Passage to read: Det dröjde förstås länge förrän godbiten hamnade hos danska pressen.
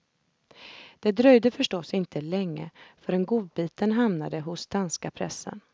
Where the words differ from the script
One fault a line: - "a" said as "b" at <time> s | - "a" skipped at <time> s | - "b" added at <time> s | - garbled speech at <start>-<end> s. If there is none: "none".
- "inte" added at 1.9 s